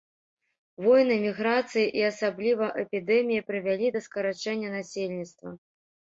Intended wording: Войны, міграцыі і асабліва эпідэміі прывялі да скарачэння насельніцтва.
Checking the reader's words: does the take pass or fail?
pass